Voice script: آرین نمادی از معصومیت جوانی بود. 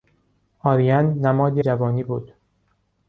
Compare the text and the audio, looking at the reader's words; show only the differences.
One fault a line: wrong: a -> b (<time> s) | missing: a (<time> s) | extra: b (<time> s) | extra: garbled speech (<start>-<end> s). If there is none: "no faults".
missing: از معصومیت (1.6 s)